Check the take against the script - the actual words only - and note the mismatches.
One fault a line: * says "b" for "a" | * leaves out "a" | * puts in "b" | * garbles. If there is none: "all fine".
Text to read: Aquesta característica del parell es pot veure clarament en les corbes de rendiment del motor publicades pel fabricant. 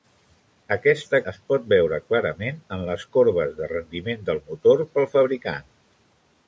* leaves out "característica del parell"
* leaves out "publicades"